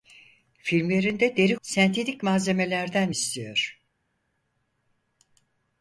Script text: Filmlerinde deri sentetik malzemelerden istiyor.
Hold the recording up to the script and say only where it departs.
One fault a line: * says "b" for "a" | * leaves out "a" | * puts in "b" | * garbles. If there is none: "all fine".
all fine